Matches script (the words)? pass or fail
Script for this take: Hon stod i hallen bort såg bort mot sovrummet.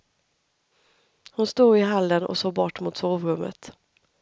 fail